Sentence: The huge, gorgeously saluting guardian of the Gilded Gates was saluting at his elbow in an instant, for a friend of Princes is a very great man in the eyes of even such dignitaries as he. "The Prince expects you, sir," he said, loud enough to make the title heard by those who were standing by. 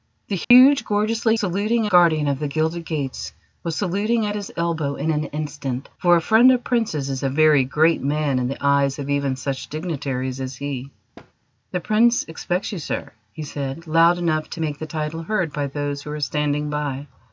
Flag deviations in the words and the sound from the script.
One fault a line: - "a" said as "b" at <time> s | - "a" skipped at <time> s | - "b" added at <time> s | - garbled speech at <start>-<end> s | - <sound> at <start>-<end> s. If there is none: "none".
- dropout at 0.4-0.5 s
- thud at 11.2-11.3 s